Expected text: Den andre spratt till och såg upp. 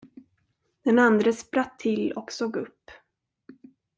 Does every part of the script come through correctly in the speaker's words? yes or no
yes